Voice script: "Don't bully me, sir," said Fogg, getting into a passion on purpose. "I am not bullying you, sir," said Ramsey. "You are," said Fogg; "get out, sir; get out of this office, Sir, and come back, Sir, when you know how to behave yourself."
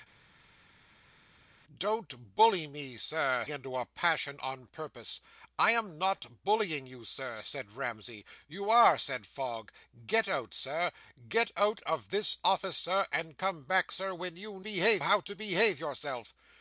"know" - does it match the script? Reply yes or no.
no